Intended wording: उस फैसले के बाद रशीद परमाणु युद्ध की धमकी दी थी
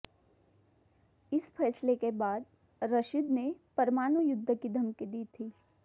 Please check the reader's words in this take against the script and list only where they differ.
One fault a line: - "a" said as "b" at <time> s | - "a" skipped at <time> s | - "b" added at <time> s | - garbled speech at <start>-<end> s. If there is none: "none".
- "उस" said as "इस" at 1.3 s
- "ने" added at 3.3 s